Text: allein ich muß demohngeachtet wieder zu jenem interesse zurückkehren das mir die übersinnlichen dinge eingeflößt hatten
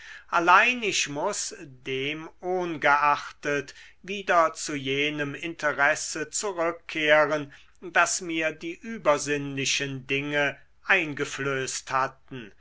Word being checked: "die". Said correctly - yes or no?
yes